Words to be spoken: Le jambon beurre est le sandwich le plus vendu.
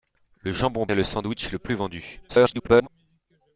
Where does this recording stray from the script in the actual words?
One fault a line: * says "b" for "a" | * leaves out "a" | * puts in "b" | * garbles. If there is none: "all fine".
* leaves out "beurre"
* garbles